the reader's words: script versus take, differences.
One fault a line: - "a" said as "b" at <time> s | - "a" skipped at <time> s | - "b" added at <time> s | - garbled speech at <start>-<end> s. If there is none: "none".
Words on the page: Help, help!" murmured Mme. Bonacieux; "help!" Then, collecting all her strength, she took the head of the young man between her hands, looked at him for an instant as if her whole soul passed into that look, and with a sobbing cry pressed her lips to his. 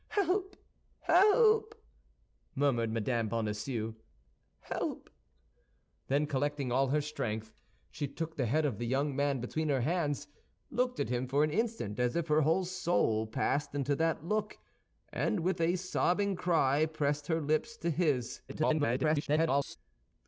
- garbled speech at 18.5-19.8 s